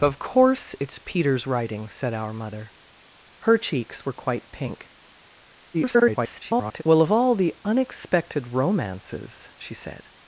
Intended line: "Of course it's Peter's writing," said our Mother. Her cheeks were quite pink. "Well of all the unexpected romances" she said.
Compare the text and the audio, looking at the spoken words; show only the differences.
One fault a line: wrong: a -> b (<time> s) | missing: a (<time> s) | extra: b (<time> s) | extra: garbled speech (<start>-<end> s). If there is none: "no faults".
extra: garbled speech (5.7-6.8 s)